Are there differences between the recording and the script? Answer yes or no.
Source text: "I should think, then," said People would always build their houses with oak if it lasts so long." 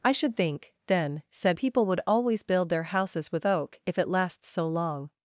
no